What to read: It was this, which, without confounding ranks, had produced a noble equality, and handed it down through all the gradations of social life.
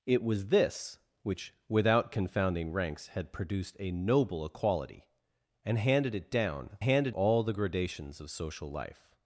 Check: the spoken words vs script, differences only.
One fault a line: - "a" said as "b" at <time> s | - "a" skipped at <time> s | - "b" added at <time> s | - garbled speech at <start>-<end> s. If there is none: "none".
- "through" said as "handed" at 6.8 s